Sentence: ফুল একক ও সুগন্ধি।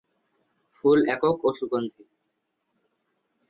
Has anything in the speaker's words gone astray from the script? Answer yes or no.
no